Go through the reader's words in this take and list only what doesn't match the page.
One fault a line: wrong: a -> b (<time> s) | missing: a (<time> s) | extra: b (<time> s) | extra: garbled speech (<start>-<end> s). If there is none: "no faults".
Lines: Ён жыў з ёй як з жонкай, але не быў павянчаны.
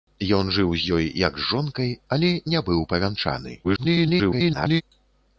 extra: garbled speech (3.6-4.8 s)